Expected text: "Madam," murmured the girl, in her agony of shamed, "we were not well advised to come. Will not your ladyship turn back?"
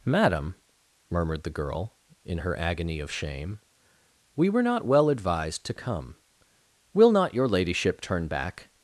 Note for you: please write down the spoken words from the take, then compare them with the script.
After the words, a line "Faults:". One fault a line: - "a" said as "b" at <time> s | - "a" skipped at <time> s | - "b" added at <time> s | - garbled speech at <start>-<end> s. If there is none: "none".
"Madam," murmured the girl, in her agony of shame, "we were not well advised to come. Will not your ladyship turn back?"
Faults:
- "shamed" said as "shame" at 3.1 s